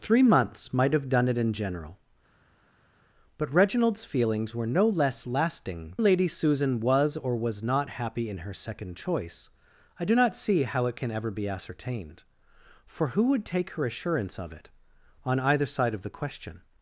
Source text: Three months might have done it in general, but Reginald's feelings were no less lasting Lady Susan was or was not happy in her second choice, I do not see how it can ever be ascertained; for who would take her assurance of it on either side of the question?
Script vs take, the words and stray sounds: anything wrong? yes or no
no